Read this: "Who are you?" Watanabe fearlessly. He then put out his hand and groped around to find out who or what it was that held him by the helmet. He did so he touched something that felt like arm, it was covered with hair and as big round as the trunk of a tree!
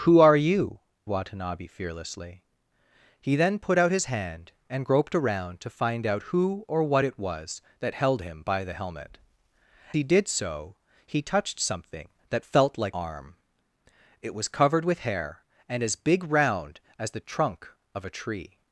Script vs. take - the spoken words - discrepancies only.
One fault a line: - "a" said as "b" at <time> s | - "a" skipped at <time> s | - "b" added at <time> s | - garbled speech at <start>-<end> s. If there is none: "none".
none